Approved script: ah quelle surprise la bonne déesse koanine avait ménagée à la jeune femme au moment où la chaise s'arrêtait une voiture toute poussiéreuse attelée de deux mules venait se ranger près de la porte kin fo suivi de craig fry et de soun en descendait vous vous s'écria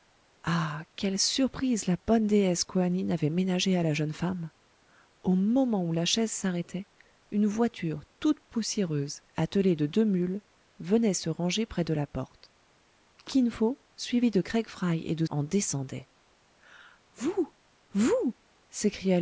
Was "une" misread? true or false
false